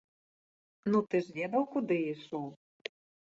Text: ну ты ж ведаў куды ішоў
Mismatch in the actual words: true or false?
false